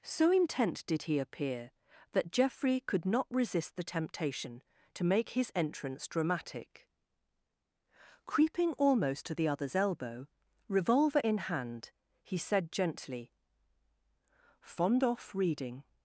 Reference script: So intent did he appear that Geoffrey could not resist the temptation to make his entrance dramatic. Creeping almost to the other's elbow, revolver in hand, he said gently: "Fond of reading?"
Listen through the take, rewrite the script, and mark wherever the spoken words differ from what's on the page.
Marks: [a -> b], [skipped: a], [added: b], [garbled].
So intent did he appear that Geoffrey could not resist the temptation to make his entrance dramatic. Creeping almost to the other's elbow, revolver in hand, he said gently: "Fond [of -> off] reading?"